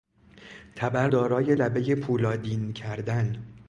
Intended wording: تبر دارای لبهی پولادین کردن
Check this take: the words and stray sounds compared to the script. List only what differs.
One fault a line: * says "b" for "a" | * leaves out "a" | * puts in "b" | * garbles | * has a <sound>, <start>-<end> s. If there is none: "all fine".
all fine